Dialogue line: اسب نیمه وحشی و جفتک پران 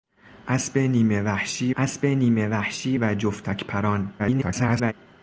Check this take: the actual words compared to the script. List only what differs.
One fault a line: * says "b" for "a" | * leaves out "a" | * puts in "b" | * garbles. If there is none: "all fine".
* puts in "اسب نیمه وحشی"
* garbles